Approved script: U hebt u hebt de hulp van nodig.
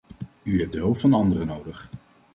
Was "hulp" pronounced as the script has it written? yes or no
yes